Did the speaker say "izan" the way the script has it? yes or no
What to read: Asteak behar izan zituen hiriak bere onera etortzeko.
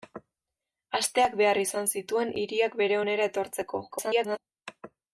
yes